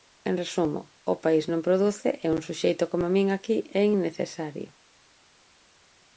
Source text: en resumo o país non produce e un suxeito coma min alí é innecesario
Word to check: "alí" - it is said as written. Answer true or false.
false